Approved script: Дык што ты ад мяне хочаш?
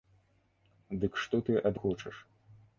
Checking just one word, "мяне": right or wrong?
wrong